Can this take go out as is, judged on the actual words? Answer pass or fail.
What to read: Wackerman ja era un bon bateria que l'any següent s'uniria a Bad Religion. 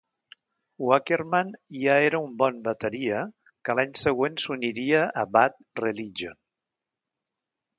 pass